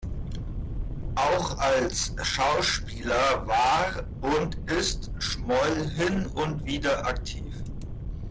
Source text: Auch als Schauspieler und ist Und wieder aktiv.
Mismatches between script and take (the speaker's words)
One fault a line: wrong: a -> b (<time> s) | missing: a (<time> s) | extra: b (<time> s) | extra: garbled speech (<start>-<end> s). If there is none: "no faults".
extra: war (3.5 s)
extra: Schmoll hin (5.2 s)